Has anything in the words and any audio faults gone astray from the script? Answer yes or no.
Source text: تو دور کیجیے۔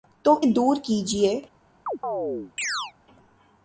yes